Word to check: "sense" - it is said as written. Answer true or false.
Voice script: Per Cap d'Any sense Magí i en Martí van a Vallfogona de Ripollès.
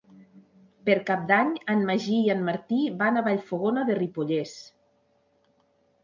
false